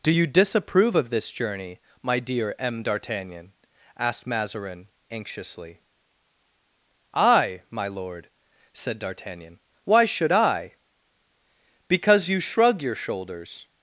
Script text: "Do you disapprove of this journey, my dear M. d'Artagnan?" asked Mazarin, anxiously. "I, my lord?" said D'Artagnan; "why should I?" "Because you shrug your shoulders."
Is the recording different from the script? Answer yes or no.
no